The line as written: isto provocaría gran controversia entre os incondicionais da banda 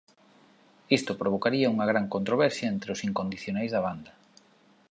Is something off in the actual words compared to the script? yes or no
yes